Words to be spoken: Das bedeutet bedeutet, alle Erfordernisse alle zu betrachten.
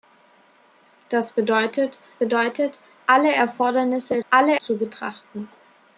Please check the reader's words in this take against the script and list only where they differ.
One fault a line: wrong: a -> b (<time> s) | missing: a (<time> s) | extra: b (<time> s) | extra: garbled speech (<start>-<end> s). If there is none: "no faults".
no faults